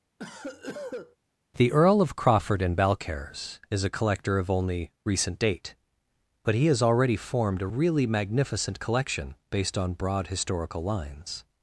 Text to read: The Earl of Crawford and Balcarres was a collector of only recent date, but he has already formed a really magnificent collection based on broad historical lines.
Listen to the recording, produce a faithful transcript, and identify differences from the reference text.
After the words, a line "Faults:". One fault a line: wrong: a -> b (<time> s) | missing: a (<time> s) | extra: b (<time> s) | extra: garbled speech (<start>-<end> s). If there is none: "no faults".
The Earl of Crawford and Balcarres is a collector of only recent date, but he has already formed a really magnificent collection based on broad historical lines.
Faults:
wrong: was -> is (3.7 s)